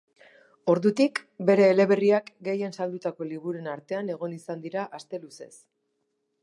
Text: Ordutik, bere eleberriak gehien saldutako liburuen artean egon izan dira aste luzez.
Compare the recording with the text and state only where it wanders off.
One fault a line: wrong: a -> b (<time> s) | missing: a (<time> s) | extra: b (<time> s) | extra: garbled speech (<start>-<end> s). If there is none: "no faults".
no faults